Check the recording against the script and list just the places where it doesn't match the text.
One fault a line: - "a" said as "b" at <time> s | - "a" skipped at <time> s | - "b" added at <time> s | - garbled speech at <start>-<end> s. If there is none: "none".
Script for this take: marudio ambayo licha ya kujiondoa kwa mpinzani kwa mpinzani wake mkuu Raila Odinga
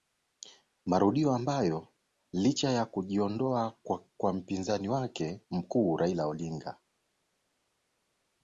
- "kwa mpinzani" skipped at 4.9 s